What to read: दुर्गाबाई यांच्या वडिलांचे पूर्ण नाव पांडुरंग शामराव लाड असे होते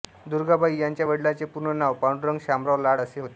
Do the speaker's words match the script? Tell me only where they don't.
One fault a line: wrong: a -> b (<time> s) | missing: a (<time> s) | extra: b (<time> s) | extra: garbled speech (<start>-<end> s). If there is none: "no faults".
no faults